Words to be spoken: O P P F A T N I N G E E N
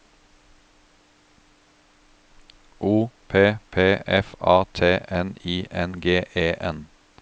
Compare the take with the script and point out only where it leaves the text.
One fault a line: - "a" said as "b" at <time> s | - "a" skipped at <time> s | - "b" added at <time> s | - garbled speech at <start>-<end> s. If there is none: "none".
- "E" skipped at 6.5 s